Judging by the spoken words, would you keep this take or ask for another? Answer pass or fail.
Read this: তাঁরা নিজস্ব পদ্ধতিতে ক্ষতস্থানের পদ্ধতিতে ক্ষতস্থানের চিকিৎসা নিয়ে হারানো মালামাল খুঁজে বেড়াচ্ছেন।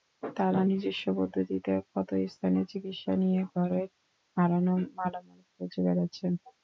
fail